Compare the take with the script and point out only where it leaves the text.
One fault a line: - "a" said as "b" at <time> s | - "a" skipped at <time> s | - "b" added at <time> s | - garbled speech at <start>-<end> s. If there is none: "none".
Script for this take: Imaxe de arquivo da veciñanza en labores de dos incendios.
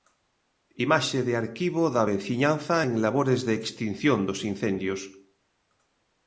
- "extinción" added at 3.6 s